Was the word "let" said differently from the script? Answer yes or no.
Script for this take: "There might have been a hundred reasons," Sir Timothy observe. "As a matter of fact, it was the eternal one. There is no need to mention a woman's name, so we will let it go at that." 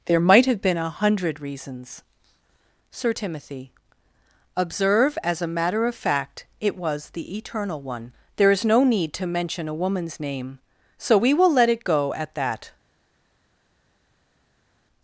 no